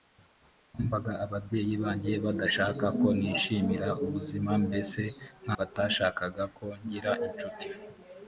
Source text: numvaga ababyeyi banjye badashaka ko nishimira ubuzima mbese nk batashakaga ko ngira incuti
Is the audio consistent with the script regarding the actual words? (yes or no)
yes